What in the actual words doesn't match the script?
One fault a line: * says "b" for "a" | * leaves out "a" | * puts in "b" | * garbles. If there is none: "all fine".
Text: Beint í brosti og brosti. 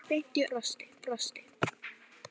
all fine